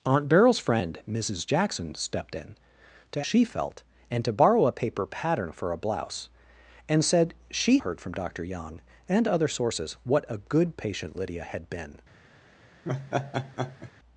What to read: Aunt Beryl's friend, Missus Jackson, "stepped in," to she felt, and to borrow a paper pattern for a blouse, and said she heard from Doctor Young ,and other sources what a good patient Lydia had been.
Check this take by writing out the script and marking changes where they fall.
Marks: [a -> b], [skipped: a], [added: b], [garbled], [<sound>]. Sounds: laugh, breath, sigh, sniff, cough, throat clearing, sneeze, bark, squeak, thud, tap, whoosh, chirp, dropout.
Aunt Beryl's friend, Missus Jackson, "stepped in," to she felt, and to borrow a paper pattern for a blouse, and said she heard from Doctor Young ,and other sources what a good patient Lydia had been. [laugh]